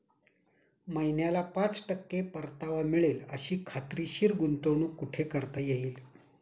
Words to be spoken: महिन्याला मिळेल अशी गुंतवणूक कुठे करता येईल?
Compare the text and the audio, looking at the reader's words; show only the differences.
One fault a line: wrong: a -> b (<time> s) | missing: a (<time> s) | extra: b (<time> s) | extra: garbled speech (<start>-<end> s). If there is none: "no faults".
extra: पाच टक्के परतावा (1.6 s)
extra: खात्रीशीर (3.7 s)